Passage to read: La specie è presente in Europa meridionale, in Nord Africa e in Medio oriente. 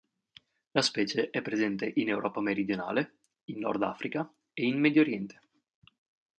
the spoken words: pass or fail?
pass